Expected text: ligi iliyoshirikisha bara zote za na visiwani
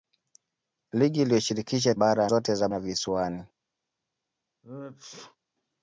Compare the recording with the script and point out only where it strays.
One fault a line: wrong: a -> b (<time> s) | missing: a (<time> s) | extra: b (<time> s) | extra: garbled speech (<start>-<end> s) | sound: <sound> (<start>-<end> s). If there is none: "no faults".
sound: sneeze (4.6-5.4 s)